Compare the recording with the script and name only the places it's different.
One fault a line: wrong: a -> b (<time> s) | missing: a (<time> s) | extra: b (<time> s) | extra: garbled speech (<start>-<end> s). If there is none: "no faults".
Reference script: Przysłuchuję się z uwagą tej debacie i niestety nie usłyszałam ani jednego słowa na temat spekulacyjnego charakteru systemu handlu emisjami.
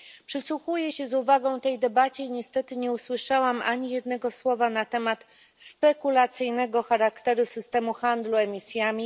no faults